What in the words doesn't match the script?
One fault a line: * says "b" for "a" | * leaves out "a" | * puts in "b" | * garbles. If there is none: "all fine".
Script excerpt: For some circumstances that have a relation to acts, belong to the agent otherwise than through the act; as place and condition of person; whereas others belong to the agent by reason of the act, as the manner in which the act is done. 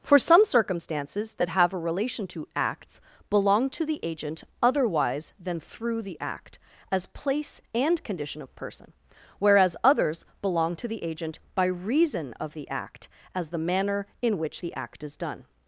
all fine